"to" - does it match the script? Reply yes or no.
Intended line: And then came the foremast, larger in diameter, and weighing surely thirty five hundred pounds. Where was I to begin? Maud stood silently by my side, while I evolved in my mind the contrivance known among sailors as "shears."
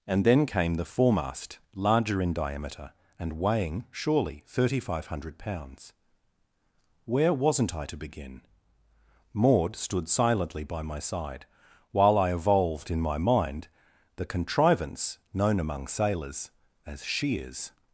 yes